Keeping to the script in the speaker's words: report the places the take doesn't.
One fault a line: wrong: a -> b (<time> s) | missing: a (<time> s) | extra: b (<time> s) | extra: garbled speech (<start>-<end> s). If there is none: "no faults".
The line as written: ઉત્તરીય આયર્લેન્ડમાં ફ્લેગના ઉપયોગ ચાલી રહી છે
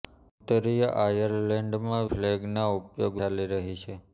no faults